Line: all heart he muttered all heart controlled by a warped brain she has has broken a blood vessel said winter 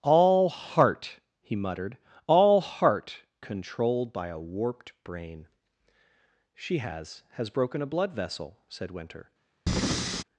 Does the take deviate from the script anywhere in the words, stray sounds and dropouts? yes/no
yes